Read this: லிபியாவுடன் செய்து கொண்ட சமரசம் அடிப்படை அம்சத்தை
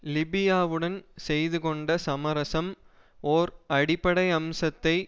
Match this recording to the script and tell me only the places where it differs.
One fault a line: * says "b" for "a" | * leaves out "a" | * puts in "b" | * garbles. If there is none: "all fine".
* puts in "ஓர்"